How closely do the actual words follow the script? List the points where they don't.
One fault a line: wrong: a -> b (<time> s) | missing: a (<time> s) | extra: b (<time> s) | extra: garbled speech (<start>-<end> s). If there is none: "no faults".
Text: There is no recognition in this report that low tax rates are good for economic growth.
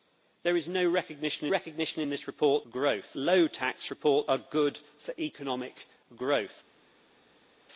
extra: recognition (1.5 s)
wrong: that -> growth (2.7 s)
wrong: rates -> report (3.9 s)